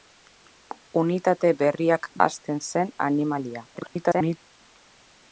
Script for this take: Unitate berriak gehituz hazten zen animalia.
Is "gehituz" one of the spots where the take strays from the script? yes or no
yes